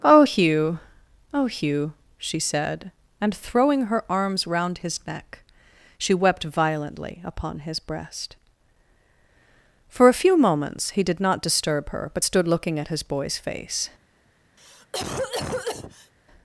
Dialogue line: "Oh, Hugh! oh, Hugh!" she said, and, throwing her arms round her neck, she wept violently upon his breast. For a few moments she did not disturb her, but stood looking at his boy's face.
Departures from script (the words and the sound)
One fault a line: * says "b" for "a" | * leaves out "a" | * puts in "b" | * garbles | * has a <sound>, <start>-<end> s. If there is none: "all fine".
* says "his" for "her"
* says "he" for "she"
* has a cough, 14.6-16.1 s